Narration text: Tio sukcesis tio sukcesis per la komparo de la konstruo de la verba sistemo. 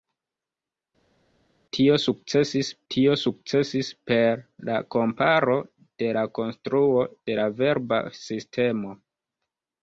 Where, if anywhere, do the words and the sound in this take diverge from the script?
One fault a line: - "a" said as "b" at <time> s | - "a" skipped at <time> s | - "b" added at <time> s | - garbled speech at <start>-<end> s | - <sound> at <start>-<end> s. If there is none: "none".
none